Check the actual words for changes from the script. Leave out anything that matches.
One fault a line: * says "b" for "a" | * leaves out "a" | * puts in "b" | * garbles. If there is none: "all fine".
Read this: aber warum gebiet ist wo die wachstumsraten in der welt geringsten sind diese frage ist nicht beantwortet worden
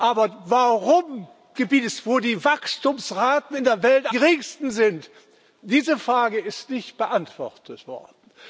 all fine